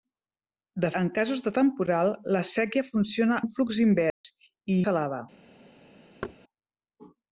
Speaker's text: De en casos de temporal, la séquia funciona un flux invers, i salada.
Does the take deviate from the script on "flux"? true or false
false